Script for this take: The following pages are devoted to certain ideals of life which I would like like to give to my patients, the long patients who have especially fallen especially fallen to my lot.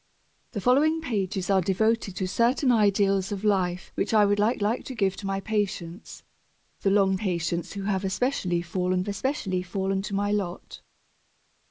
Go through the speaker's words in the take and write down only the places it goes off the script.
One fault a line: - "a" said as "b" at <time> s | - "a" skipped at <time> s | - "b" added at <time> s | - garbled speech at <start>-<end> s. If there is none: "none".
none